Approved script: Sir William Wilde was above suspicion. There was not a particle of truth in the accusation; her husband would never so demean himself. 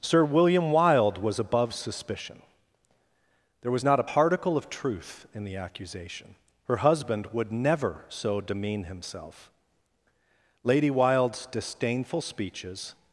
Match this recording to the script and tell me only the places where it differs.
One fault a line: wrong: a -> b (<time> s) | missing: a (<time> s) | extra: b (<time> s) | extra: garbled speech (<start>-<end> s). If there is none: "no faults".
extra: Lady Wilde's disdainful speeches (10.6 s)